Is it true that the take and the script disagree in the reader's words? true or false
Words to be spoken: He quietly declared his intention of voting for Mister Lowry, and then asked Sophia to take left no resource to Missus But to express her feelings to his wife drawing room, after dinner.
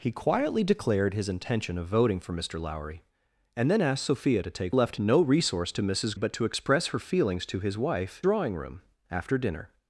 false